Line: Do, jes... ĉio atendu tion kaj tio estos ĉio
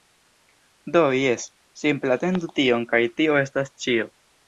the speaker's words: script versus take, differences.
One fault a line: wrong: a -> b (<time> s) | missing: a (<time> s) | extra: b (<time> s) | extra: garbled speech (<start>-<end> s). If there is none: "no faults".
wrong: ĉio -> simple (1.8 s)
wrong: estos -> estas (3.4 s)